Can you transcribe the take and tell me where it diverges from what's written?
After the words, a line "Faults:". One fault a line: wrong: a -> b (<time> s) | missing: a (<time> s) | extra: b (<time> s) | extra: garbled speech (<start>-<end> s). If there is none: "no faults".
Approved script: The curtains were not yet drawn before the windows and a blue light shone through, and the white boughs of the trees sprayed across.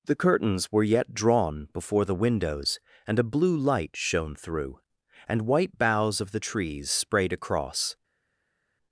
The curtains were yet drawn before the windows and a blue light shone through, and white boughs of the trees sprayed across.
Faults:
missing: not (0.8 s)
missing: the (5.4 s)